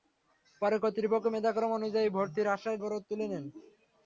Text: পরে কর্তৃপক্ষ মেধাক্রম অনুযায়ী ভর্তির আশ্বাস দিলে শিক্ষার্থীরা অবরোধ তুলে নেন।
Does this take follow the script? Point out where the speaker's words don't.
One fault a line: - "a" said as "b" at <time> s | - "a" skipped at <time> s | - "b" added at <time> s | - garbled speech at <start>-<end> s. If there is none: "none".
- "দিলে শিক্ষার্থীরা" skipped at 2.8 s